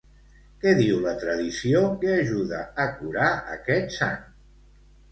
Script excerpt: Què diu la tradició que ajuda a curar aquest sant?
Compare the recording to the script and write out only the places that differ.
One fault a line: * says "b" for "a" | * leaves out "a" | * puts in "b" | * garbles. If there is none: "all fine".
all fine